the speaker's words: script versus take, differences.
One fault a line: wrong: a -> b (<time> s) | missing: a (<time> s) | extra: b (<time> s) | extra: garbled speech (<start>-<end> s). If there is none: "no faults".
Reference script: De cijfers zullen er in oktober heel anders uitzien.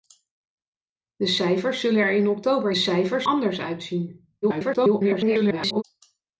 wrong: heel -> cijfers (2.7 s)
extra: garbled speech (4.4-5.8 s)